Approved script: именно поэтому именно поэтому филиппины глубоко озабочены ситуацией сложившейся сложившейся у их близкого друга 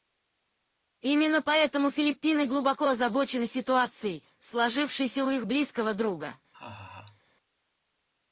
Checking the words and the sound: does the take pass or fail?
fail